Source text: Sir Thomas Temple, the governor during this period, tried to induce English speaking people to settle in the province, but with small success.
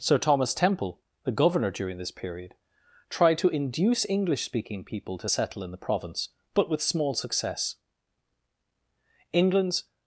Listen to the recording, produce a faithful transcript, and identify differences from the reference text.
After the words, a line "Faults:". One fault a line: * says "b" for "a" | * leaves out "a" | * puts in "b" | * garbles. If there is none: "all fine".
Sir Thomas Temple, the governor during this period, tried to induce English speaking people to settle in the province, but with small success. England's
Faults:
* puts in "England's"